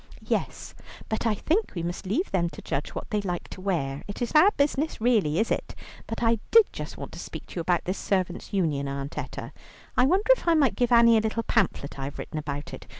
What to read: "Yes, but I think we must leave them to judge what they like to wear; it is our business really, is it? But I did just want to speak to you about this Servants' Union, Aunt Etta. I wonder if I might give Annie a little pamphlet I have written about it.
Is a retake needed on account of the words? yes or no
no